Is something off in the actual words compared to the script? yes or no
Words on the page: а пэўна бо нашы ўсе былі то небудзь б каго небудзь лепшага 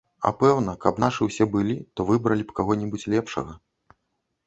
yes